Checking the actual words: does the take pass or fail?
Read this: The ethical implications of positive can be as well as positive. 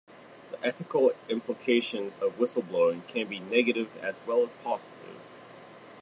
fail